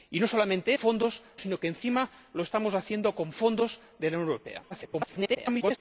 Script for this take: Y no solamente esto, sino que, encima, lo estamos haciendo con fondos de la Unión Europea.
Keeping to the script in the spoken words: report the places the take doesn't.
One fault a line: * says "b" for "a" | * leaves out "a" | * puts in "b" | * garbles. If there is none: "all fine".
* says "fondos" for "esto"
* garbles